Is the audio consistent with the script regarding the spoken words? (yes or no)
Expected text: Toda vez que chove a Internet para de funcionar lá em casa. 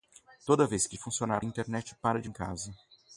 no